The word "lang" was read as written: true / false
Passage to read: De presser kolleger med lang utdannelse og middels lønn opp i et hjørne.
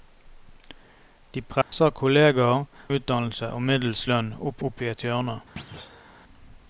false